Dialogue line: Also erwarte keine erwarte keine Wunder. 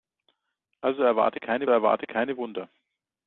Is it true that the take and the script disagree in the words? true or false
false